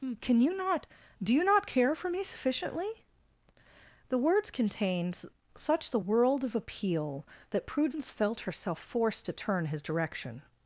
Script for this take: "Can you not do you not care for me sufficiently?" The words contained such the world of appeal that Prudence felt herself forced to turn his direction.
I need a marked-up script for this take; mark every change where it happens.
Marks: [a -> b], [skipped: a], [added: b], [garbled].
"Can you not do you not care for me sufficiently?" The words contained such the world of appeal that Prudence felt herself forced to turn his direction.